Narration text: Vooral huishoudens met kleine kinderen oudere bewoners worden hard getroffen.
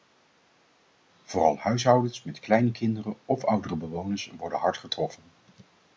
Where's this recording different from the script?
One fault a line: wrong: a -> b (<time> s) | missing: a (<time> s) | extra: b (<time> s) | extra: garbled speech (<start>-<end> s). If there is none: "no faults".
extra: of (3.2 s)